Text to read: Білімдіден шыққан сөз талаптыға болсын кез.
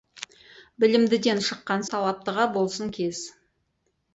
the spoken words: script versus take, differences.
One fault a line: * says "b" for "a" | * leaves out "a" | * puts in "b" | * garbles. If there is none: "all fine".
* leaves out "сөз"